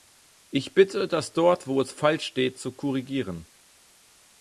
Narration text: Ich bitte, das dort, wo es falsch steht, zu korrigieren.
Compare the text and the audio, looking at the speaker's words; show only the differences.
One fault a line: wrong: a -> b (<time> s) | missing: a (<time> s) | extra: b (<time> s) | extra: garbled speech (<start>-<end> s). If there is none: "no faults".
no faults